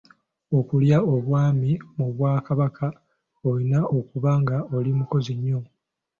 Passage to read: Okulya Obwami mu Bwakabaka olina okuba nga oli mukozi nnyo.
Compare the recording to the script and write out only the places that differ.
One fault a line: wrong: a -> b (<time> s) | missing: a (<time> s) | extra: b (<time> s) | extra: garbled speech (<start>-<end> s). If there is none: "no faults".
no faults